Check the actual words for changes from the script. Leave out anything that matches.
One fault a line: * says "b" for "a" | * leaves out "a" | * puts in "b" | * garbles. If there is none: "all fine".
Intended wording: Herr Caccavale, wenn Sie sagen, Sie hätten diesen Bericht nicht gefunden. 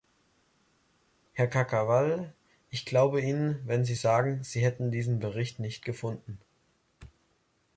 * puts in "ich glaube Ihnen"